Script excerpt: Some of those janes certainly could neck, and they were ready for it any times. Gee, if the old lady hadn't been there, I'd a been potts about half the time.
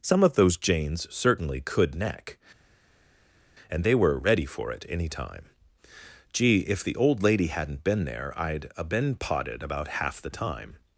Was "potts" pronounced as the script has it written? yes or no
no